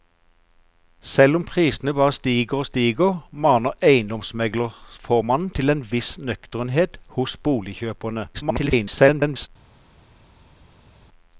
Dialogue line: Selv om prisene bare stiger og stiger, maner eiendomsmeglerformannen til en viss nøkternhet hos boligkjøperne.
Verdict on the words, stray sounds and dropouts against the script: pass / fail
fail